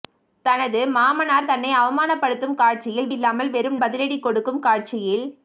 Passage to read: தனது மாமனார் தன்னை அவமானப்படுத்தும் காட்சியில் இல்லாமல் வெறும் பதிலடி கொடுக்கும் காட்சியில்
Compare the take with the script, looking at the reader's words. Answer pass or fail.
pass